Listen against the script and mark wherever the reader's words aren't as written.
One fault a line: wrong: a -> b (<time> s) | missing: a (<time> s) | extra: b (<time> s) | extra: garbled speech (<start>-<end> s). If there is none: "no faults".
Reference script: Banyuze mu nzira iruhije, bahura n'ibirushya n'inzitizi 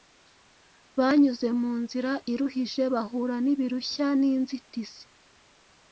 no faults